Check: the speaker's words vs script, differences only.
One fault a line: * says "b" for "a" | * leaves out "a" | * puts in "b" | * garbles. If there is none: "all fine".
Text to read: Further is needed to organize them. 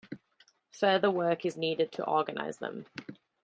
* puts in "work"